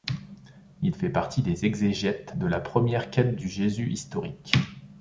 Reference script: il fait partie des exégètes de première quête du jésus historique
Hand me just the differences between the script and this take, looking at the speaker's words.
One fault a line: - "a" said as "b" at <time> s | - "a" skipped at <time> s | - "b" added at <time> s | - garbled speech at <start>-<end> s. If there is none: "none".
- "la" added at 2.5 s